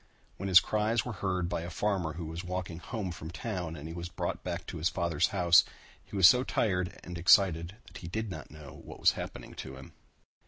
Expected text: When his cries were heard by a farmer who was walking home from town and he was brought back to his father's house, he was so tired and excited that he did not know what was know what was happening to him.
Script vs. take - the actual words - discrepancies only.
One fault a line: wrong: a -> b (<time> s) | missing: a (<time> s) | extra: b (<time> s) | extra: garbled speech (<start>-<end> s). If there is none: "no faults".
missing: know what was (9.1 s)